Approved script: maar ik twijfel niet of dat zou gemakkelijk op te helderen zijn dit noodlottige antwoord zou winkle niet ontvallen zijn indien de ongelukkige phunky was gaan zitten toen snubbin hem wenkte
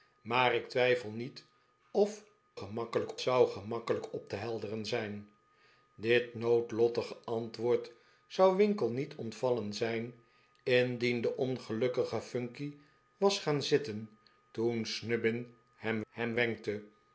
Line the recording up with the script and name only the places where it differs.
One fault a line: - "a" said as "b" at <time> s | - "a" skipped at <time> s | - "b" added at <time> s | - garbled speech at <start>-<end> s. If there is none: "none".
- "dat" said as "gemakkelijk" at 2.5 s
- "hem" added at 16.1 s